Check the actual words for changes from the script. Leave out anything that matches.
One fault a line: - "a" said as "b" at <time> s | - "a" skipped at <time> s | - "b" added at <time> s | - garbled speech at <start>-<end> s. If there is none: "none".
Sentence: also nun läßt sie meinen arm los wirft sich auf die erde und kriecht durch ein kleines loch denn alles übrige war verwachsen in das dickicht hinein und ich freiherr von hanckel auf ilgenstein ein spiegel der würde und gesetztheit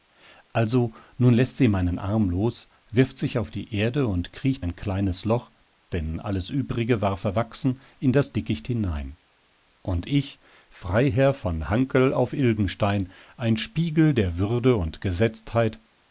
- "durch" skipped at 4.6 s